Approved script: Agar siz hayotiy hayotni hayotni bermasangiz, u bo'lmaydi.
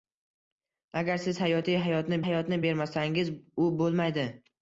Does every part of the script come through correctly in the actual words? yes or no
yes